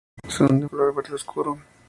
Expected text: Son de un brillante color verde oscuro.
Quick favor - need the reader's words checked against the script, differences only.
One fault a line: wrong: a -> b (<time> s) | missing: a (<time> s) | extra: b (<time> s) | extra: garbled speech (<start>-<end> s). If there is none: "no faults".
missing: un brillante (0.7 s)